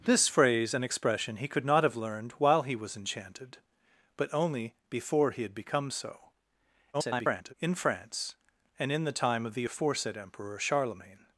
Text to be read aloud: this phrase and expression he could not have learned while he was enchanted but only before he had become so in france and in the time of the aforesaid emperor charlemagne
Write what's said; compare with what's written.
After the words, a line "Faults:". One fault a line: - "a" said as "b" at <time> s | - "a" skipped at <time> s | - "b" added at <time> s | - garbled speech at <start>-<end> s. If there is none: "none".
this phrase and expression he could not have learned while he was enchanted but only before he had become so [garbled] in france and in the time of the aforesaid emperor charlemagne
Faults:
- garbled speech at 6.9-7.5 s